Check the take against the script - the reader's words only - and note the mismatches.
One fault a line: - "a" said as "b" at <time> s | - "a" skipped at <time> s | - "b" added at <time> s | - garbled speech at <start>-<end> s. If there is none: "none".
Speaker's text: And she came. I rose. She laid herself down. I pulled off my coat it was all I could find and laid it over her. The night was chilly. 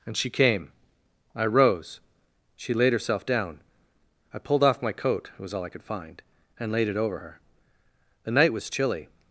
none